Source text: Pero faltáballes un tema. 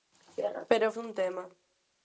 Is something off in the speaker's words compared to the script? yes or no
yes